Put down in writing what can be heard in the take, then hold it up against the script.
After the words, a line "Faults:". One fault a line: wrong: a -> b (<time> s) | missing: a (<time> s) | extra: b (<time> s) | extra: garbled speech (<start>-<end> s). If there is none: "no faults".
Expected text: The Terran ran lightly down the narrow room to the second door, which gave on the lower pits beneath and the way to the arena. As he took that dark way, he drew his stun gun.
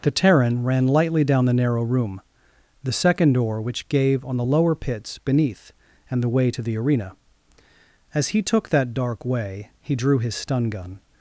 The Terran ran lightly down the narrow room the second door, which gave on the lower pits beneath and the way to the arena. As he took that dark way, he drew his stun gun.
Faults:
missing: to (2.2 s)